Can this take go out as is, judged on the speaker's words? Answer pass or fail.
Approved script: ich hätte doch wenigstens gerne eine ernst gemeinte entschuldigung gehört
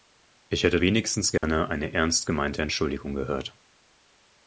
fail